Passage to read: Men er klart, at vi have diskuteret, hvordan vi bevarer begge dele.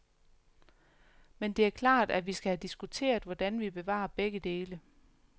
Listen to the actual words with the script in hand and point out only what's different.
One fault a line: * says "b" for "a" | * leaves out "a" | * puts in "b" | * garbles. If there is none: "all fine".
* puts in "det"
* puts in "skal"